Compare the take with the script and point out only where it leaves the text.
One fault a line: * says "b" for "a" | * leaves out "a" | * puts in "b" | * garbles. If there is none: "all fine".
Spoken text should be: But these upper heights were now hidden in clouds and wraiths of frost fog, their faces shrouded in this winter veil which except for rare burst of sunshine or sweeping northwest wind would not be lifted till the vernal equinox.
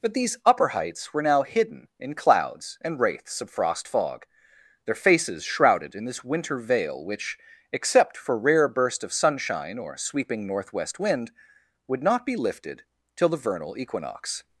all fine